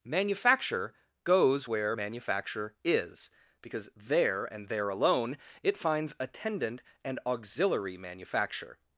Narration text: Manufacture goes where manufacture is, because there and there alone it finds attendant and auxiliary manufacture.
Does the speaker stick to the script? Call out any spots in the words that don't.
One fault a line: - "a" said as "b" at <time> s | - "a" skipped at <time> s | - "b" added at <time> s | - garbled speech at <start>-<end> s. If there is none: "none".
none